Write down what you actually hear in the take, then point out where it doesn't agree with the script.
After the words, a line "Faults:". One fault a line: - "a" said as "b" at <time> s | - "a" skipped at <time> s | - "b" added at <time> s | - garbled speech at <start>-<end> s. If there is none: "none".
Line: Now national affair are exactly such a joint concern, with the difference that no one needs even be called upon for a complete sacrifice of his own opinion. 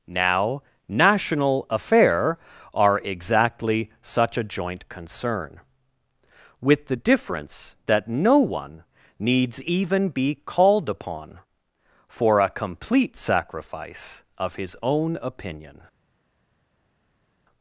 Now national affair are exactly such a joint concern, with the difference that no one needs even be called upon for a complete sacrifice of his own opinion.
Faults:
none